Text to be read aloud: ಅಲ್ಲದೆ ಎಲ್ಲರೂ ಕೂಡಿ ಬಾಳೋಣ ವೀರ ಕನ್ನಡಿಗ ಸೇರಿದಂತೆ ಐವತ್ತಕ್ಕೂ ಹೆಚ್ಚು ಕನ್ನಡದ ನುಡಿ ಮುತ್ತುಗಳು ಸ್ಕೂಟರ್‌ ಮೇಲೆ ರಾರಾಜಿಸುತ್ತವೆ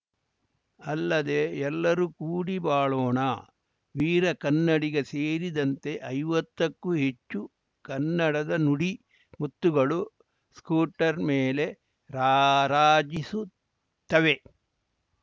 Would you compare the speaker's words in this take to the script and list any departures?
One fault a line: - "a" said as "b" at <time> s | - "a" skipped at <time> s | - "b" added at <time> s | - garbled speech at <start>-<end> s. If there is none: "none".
none